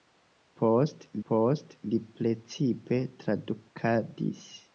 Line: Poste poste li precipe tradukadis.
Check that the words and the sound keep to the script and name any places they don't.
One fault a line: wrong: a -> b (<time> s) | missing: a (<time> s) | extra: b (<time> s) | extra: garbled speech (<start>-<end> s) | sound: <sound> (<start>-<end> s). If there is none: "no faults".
no faults